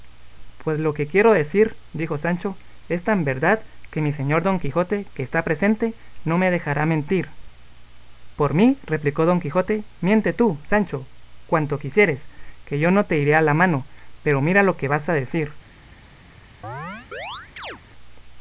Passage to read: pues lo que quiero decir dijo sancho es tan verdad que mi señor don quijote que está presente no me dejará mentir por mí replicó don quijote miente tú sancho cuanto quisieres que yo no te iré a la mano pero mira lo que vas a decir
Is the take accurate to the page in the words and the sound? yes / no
no